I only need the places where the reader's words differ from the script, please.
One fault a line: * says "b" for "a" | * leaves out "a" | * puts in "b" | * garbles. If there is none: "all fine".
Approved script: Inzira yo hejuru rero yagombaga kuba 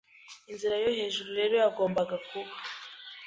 all fine